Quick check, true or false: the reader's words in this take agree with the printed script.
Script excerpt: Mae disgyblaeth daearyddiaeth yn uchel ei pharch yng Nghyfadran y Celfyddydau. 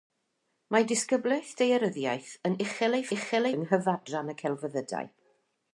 false